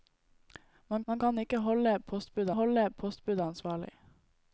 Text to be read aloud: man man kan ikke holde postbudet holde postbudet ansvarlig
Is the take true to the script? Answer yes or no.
yes